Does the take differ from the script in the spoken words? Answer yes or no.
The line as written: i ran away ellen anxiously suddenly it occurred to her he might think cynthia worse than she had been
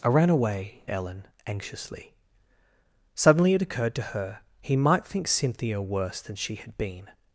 no